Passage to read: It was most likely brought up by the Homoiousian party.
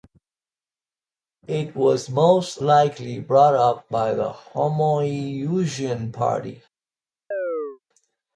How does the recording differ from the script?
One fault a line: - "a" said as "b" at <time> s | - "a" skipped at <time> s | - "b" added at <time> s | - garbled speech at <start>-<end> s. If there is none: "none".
none